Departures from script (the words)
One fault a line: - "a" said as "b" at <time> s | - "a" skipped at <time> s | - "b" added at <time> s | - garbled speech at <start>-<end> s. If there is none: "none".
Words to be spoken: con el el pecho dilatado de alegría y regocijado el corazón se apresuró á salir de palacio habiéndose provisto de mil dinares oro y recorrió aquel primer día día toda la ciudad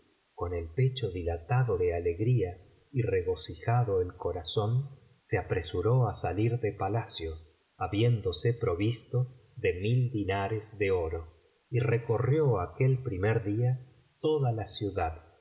- "el" skipped at 0.7 s
- "de" added at 10.8 s
- "día" skipped at 13.9 s